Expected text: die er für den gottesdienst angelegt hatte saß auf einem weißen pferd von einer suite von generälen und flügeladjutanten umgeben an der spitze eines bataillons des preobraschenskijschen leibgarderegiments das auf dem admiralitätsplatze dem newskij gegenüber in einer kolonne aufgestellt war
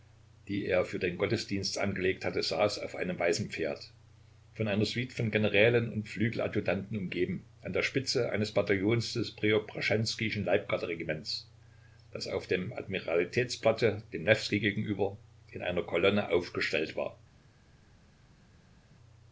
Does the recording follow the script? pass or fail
pass